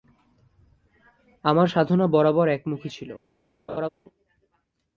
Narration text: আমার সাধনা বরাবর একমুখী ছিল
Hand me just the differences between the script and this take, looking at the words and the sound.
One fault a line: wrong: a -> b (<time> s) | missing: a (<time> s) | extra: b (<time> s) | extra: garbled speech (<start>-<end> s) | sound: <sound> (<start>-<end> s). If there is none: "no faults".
sound: laugh (3.7-3.9 s)